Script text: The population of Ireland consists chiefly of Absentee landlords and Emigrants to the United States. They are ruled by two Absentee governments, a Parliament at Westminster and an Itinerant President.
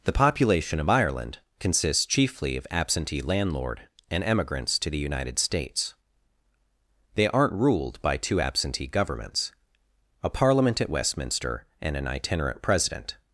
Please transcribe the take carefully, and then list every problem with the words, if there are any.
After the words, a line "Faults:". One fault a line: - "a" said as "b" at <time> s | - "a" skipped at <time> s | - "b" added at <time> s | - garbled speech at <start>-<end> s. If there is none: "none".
The population of Ireland consists chiefly of Absentee landlord and Emigrants to the United States. They aren't ruled by two Absentee governments, a Parliament at Westminster and an Itinerant President.
Faults:
- "landlords" said as "landlord" at 3.2 s
- "are" said as "aren't" at 7.3 s